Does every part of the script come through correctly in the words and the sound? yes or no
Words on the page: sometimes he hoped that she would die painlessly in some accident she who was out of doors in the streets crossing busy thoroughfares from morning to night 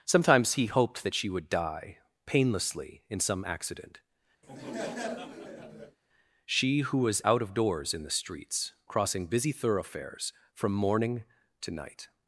no